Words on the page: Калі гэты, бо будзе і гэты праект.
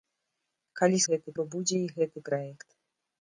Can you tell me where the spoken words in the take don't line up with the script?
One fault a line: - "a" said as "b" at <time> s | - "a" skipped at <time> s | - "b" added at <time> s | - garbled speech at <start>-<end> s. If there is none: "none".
none